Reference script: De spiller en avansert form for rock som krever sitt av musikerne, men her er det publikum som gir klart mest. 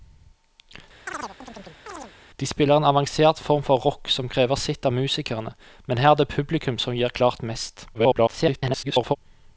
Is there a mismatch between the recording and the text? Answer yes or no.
yes